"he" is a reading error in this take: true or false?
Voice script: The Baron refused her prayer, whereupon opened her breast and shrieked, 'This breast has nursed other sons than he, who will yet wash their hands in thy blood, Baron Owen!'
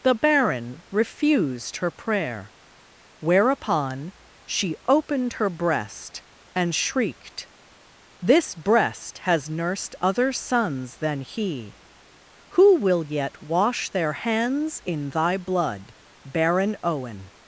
false